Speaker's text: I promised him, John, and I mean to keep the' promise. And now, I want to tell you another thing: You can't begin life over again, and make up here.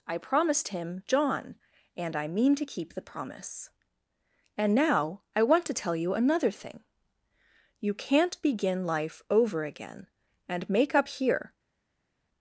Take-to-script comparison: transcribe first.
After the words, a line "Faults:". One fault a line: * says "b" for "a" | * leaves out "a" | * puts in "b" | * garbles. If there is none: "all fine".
I promised him, John, and I mean to keep the' promise. And now, I want to tell you another thing: You can't begin life over again, and make up here.
Faults:
all fine